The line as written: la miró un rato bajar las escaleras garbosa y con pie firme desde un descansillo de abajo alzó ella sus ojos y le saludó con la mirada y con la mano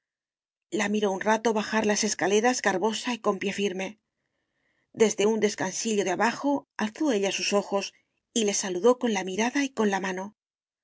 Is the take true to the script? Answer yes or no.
yes